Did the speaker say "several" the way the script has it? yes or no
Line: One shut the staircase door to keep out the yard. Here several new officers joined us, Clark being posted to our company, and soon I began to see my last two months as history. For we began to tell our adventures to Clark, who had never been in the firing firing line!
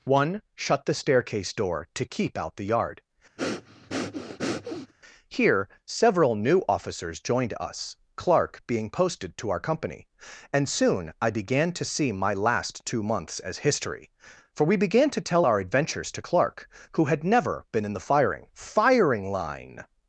yes